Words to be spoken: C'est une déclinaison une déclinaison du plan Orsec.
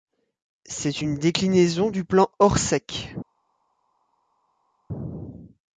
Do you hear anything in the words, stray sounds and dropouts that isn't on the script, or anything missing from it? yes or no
yes